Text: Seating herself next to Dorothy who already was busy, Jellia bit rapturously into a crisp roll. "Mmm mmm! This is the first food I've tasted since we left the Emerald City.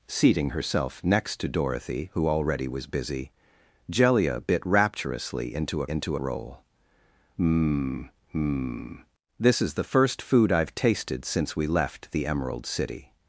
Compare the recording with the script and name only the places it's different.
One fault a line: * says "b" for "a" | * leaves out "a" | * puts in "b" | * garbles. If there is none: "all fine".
* says "into" for "crisp"